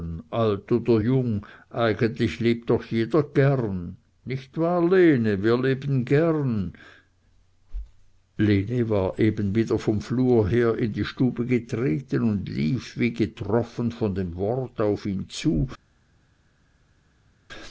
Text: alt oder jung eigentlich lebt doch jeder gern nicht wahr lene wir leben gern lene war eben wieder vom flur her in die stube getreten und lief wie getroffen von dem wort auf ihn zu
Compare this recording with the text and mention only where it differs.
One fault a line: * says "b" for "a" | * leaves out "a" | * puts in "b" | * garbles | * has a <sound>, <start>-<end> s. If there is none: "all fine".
all fine